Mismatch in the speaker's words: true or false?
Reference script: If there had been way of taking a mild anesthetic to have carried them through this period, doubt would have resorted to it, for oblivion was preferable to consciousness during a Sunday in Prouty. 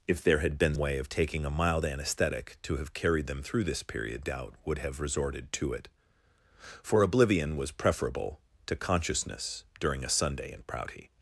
false